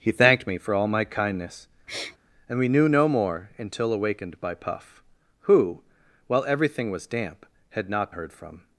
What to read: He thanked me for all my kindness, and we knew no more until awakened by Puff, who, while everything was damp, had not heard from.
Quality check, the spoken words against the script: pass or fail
pass